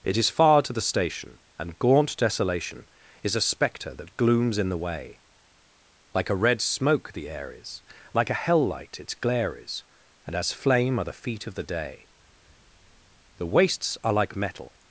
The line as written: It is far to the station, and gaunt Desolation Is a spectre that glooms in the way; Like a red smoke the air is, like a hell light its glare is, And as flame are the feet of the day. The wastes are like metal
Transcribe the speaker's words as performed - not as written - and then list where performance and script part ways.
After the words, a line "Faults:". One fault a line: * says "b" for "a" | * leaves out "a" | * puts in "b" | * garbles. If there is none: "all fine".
It is far to the station, and gaunt Desolation Is a spectre that glooms in the way; Like a red smoke the air is, like a hell light its glare is, And as flame are the feet of the day. The wastes are like metal
Faults:
all fine